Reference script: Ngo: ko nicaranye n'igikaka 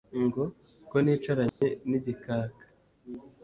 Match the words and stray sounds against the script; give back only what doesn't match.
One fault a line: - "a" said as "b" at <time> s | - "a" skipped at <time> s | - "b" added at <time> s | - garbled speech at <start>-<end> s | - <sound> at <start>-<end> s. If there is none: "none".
- dropout at 1.5-1.6 s